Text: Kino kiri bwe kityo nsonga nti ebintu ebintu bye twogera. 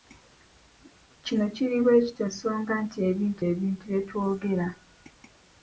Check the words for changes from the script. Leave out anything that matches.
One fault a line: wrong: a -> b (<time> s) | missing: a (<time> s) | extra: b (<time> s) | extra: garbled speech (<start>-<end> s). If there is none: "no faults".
no faults